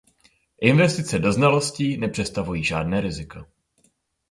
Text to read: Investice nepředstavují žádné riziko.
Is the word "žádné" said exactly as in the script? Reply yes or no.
yes